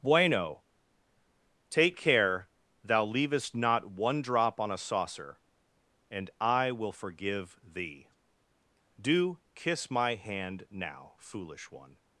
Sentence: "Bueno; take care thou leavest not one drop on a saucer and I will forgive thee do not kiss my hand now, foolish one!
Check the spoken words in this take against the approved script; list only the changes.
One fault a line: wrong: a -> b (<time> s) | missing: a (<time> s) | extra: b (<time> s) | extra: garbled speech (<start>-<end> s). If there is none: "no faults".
missing: not (9.4 s)